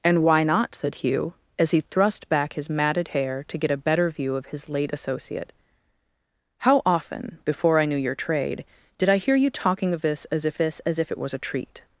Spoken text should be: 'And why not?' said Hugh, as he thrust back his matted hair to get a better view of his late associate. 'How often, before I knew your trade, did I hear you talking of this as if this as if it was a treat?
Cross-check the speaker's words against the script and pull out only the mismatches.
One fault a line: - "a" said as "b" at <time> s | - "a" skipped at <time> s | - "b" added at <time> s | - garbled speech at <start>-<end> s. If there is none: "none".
none